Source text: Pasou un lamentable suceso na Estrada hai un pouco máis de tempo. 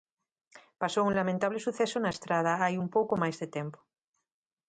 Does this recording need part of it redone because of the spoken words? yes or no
no